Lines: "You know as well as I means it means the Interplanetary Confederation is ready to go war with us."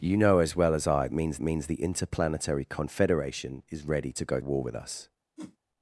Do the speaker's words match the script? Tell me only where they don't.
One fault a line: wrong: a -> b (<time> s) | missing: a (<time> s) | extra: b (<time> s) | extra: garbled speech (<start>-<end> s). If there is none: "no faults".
no faults